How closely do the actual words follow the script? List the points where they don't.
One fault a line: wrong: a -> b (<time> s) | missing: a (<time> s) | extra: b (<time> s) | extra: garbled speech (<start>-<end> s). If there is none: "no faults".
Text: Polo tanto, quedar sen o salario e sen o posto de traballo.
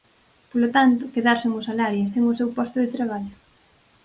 extra: seu (2.4 s)